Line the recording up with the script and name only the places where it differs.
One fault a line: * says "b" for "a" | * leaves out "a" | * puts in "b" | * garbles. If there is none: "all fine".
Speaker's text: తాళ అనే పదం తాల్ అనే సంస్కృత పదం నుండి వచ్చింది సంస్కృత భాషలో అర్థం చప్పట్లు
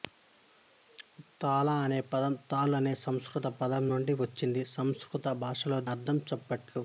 all fine